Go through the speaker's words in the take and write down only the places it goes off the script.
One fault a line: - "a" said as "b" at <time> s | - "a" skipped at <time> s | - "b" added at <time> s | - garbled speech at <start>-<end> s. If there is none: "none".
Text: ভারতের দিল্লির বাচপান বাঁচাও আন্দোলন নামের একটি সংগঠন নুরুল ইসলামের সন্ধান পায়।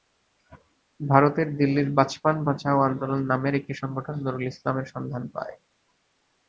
none